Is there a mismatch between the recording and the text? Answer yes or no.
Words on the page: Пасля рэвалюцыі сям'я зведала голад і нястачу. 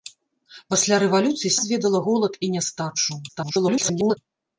yes